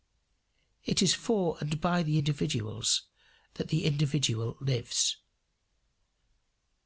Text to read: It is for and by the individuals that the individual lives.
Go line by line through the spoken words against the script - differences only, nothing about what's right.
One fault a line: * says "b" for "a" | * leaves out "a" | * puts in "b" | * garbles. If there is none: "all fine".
all fine